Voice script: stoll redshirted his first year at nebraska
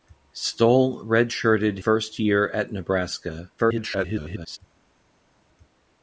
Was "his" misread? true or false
true